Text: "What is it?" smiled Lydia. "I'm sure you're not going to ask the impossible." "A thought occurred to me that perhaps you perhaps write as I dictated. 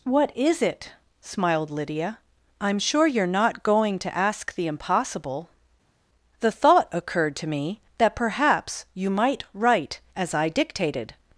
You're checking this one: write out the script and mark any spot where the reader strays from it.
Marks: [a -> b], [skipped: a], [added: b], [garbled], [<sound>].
"What is it?" smiled Lydia. "I'm sure you're not going to ask the impossible." ["A -> The] thought occurred to me that perhaps you [perhaps -> might] write as I dictated.